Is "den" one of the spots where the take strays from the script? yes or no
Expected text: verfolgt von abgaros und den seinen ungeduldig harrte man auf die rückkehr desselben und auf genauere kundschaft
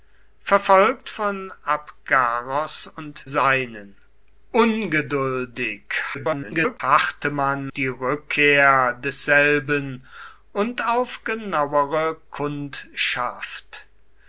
yes